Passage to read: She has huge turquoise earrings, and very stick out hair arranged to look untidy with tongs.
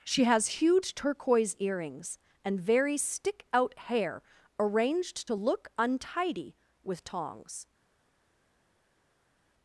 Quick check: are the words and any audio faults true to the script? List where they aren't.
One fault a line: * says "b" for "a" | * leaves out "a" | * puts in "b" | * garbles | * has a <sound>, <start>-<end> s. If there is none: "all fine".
all fine